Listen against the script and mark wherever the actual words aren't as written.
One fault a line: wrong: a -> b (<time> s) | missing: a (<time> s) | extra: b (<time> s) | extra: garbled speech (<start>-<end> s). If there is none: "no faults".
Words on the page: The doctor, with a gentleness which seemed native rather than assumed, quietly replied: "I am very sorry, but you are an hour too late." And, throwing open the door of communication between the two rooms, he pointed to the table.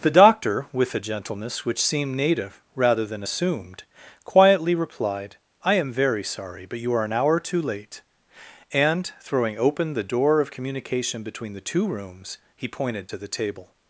no faults